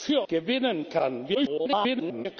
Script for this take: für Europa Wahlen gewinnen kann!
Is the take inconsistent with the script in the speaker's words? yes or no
yes